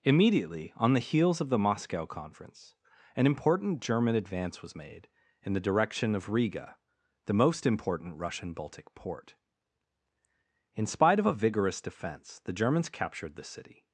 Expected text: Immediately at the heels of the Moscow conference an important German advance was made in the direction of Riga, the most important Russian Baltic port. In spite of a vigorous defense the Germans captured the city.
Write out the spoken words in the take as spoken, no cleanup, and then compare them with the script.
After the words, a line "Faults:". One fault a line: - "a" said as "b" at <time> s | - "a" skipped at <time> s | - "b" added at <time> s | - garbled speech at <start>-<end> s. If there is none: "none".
Immediately on the heels of the Moscow conference an important German advance was made in the direction of Riga, the most important Russian Baltic port. In spite of a vigorous defense the Germans captured the city.
Faults:
- "at" said as "on" at 0.8 s